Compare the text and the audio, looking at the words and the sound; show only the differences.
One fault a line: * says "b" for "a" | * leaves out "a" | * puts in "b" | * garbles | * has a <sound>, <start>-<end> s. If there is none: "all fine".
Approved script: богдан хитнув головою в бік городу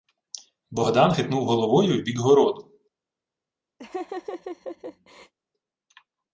* has a laugh, 3.8-5.3 s